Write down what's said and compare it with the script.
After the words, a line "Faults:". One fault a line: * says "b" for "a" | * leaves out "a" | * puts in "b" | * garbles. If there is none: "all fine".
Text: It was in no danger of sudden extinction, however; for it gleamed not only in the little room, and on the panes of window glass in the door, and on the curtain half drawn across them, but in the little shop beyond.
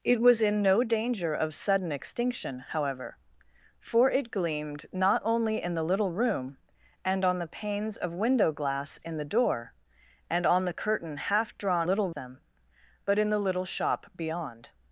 It was in no danger of sudden extinction, however; for it gleamed not only in the little room, and on the panes of window glass in the door, and on the curtain half drawn little them, but in the little shop beyond.
Faults:
* says "little" for "across"